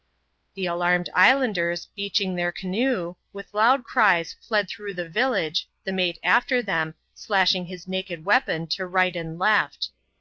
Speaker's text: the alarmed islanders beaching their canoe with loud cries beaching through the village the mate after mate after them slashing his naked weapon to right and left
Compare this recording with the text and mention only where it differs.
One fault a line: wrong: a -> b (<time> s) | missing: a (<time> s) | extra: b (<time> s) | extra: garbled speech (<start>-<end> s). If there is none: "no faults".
wrong: beaching -> fled (4.4 s)
missing: mate after (6.6 s)